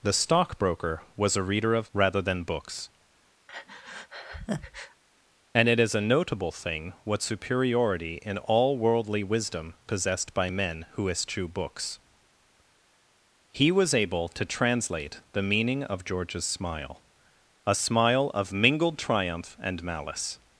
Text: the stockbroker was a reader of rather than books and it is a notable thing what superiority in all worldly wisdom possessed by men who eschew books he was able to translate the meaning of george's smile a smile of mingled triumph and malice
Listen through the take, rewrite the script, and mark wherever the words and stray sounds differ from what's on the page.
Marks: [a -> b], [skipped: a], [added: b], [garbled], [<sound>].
the stockbroker was a reader of rather than books [breath] and it is a notable thing what superiority in all worldly wisdom possessed by men who eschew books he was able to translate the meaning of george's smile a smile of mingled triumph and malice